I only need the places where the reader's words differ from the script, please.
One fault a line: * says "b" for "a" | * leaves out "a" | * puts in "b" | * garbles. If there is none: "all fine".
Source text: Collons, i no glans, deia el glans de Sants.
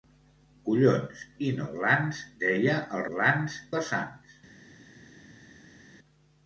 all fine